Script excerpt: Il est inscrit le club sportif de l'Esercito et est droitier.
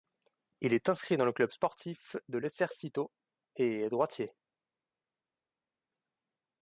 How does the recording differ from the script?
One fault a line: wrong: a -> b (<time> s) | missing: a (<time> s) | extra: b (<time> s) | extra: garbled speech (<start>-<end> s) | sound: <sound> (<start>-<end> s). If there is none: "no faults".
extra: dans (1.1 s)